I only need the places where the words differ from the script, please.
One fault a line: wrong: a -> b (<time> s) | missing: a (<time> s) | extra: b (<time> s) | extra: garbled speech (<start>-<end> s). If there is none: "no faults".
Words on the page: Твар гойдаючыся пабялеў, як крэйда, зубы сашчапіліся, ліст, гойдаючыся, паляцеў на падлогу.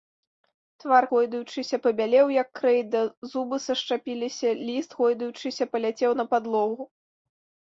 no faults